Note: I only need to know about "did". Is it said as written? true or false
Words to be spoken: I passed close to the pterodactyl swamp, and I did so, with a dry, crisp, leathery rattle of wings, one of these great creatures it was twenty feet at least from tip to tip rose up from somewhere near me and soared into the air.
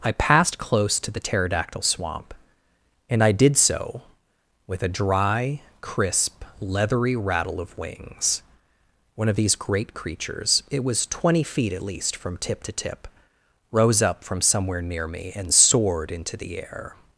true